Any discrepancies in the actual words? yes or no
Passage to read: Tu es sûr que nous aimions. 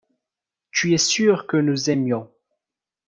no